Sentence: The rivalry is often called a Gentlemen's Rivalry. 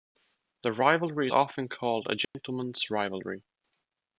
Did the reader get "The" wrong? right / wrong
right